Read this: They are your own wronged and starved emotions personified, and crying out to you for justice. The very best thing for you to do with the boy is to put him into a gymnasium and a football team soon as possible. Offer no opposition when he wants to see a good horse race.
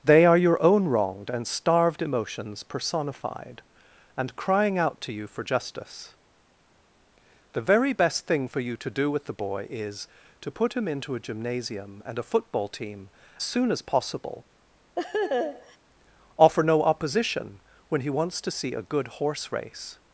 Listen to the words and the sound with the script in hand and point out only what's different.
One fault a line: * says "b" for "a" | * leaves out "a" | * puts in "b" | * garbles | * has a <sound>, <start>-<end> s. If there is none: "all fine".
* has a laugh, 15.0-15.8 s